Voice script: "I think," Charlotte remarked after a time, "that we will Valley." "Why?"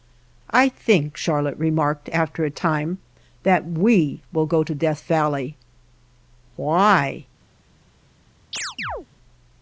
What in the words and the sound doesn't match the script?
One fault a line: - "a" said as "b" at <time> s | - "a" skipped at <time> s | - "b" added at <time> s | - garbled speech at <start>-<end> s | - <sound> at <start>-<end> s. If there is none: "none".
- "go to Death" added at 4.5 s
- chirp at 8.5-9.1 s